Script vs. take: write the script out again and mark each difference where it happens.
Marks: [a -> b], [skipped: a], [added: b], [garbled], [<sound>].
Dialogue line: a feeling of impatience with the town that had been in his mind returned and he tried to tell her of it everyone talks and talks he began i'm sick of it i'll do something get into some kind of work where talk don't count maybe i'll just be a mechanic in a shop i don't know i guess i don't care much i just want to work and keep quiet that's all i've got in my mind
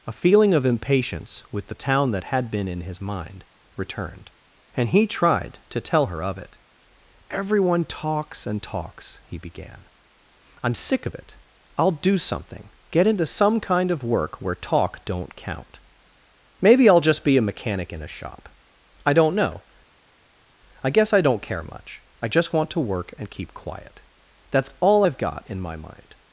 a feeling of impatience with the town that had been in his mind returned and he tried to tell her of it everyone talks and talks he began i'm sick of it i'll do something get into some kind of work where talk don't count maybe i'll just be a mechanic in a shop i don't know i guess i don't care much i just want to work and keep quiet that's all i've got in my mind